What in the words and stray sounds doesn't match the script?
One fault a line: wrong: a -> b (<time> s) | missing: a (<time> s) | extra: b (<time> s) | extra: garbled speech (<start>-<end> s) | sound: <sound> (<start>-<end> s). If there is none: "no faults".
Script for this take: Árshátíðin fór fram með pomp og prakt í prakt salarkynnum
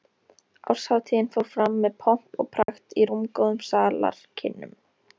sound: dropout (2.6-2.7 s)
wrong: prakt -> rúmgóðum (3.1 s)